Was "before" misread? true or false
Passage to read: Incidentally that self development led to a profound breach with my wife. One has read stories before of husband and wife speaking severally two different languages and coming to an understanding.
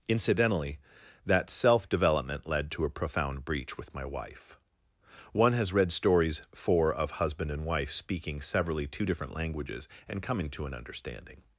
true